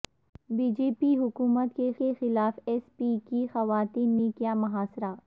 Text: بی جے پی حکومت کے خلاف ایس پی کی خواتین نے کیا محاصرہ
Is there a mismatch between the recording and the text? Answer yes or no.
yes